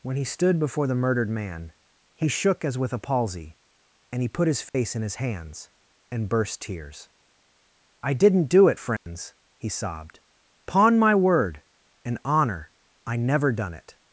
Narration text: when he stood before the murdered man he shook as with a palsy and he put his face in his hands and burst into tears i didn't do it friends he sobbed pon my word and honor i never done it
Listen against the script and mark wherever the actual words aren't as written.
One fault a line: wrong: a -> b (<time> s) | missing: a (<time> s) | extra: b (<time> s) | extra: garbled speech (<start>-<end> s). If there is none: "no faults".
missing: into (6.6 s)